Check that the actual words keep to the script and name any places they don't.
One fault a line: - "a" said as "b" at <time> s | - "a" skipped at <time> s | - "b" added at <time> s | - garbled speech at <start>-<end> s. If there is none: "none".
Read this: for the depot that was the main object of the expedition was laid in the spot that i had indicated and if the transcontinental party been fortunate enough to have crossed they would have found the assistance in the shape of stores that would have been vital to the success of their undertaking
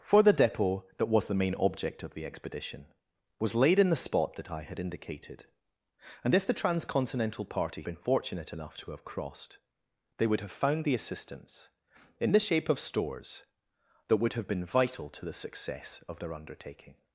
none